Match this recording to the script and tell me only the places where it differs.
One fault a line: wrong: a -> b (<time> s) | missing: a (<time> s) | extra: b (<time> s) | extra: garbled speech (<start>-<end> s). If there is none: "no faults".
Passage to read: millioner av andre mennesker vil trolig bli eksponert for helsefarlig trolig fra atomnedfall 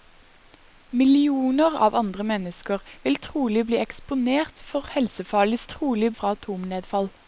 no faults